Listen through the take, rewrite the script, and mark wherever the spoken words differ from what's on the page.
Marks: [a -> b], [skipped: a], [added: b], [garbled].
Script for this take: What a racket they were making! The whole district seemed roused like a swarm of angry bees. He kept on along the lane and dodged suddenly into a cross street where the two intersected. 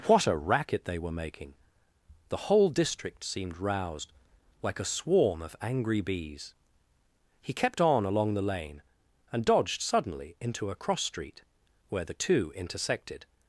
What a racket they were making! The whole district seemed roused like a swarm of angry bees. He kept on along the lane and dodged suddenly into a cross street where the two intersected.